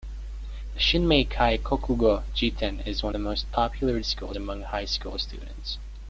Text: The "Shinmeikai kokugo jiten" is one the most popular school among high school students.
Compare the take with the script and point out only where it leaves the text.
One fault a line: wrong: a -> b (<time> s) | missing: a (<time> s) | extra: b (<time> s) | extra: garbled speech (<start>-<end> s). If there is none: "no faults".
no faults